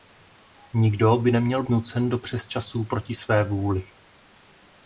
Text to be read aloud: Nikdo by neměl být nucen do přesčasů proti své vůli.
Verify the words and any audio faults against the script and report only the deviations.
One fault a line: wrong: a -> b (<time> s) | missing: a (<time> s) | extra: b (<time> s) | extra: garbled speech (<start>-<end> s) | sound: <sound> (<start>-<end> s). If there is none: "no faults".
missing: být (1.6 s)